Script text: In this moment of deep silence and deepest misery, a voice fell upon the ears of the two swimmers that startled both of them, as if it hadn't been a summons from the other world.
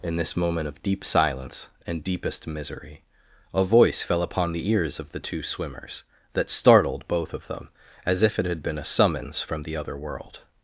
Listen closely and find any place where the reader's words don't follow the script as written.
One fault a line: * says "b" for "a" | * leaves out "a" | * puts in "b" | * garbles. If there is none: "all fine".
* says "had" for "hadn't"